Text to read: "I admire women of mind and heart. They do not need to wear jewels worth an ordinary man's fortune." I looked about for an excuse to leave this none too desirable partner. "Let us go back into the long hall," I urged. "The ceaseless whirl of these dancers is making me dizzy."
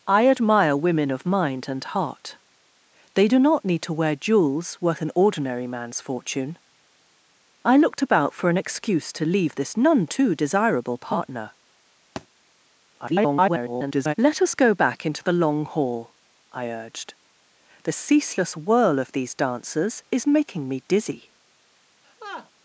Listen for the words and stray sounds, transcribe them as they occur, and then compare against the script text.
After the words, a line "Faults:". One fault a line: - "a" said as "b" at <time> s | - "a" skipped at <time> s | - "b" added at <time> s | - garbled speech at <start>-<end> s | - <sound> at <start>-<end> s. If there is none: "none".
"I admire women of mind and heart. They do not need to wear jewels worth an ordinary man's fortune." I looked about for an excuse to leave this none too desirable partner. [garbled] "Let us go back into the long hall," I urged. "The ceaseless whirl of these dancers is making me dizzy."
Faults:
- thud at 12.2-12.3 s
- garbled speech at 13.0-14.1 s
- laugh at 22.0-22.5 s